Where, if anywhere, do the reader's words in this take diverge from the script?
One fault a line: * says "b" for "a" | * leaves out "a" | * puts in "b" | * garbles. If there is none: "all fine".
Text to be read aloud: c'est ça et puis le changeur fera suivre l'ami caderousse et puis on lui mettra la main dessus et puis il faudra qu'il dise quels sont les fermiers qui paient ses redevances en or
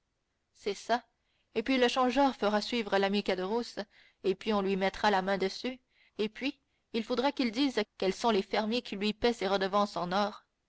* puts in "lui"